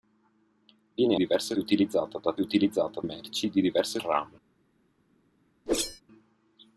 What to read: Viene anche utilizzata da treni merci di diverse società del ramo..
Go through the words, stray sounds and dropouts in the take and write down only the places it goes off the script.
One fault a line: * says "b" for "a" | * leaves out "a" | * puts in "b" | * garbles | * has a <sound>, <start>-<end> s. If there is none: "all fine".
* says "diverse" for "anche"
* says "utilizzata" for "treni"
* leaves out "società del"
* has a whoosh, 5.7-6.0 s